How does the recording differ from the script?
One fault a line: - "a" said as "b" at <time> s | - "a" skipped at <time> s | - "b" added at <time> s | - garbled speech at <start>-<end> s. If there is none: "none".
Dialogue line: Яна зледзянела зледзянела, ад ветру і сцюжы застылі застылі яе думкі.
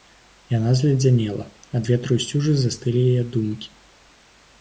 - "зледзянела" skipped at 1.4 s
- "застылі" skipped at 3.0 s